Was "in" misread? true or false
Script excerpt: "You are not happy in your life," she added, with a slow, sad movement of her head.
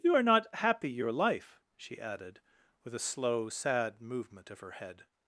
true